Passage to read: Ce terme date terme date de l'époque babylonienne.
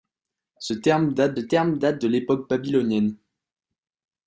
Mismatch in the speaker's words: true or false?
false